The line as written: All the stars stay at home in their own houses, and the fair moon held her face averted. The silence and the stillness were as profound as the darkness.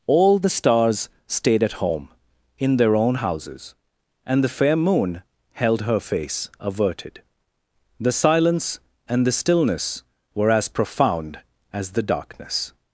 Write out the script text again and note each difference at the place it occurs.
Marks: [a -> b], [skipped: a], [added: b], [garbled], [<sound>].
All the stars [stay -> stayed] at home in their own houses, and the fair moon held her face averted. The silence and the stillness were as profound as the darkness.